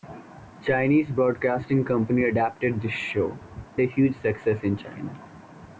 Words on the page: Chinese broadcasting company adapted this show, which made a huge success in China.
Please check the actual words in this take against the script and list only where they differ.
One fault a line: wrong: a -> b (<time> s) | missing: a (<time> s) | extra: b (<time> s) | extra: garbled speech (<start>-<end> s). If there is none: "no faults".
missing: which made (3.3 s)